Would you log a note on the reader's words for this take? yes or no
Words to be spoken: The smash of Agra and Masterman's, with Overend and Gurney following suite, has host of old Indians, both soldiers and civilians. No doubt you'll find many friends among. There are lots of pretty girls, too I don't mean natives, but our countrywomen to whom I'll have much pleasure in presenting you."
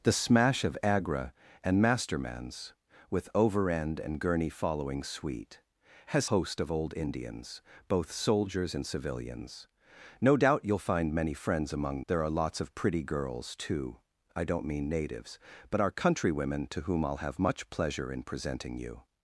no